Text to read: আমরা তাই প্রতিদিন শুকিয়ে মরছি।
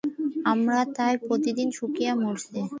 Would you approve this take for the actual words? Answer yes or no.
yes